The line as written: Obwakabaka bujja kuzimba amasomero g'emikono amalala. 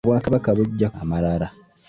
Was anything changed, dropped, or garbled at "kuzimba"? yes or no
yes